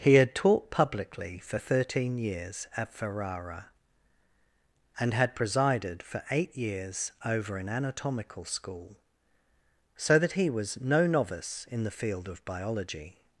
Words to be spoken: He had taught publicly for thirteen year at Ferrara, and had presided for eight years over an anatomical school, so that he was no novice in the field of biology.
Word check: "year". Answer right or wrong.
wrong